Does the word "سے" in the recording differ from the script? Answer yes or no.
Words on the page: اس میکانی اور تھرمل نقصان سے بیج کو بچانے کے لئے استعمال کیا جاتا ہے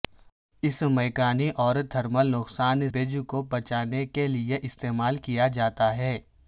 yes